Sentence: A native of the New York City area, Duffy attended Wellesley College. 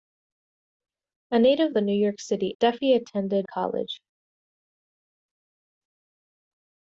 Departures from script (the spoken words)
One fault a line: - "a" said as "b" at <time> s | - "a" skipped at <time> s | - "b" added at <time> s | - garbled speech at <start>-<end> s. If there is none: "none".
- "of" skipped at 1.8 s
- "area" skipped at 2.5 s
- "Wellesley" skipped at 3.5 s